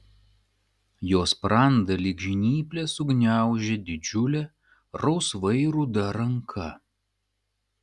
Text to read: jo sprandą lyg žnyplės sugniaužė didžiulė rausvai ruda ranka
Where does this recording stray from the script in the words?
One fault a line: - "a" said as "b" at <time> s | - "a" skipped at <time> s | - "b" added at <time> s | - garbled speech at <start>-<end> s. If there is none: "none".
none